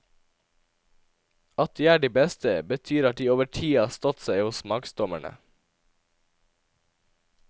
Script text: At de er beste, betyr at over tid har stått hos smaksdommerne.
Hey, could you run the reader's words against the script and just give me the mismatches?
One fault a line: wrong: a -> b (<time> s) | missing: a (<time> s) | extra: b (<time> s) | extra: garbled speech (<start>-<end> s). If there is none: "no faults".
extra: de (2.0 s)
extra: de (3.2 s)
extra: seg (4.2 s)